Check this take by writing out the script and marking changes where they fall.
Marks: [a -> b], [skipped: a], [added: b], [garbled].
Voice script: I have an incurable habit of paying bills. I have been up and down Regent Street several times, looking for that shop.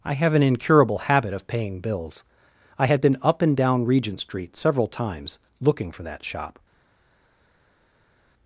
I have an incurable habit of paying bills. I [have -> had] been up and down Regent Street several times, looking for that shop.